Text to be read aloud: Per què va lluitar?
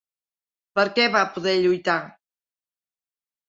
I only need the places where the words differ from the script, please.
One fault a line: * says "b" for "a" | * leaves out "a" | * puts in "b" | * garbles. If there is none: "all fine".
* puts in "poder"